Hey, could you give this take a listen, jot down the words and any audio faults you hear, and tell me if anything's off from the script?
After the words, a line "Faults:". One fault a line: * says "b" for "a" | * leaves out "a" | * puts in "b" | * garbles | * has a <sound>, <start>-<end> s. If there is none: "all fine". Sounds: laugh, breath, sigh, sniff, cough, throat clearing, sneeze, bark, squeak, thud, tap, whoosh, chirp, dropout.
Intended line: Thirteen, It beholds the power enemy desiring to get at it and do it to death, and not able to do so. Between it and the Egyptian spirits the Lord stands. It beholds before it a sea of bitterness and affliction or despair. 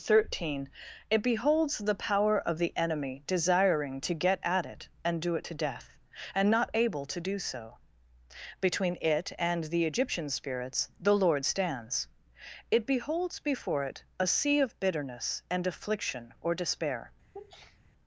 Thirteen, It beholds the power of the enemy desiring to get at it and do it to death, and not able to do so. Between it and the Egyptian spirits the Lord stands. It beholds before it a sea of bitterness and affliction or despair.
Faults:
* puts in "of the"
* has a sneeze, 17.3-17.8 s